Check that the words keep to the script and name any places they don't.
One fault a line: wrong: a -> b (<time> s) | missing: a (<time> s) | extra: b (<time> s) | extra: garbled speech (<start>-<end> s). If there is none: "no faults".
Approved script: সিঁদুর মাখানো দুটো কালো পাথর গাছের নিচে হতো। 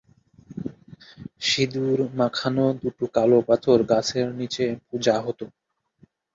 extra: পূজা (4.9 s)